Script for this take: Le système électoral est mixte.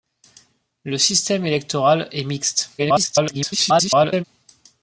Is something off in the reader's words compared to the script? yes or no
yes